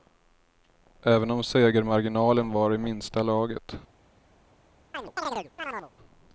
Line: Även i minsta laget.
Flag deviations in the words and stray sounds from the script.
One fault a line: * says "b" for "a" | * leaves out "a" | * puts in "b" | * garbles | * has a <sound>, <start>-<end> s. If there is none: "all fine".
* puts in "om segermarginalen var"
* has a chirp, 4.9-5.9 s